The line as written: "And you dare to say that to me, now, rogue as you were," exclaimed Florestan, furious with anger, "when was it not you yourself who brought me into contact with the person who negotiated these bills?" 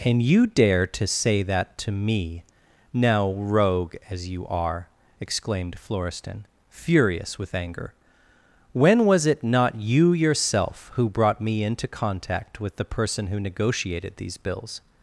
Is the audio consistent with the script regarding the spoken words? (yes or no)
no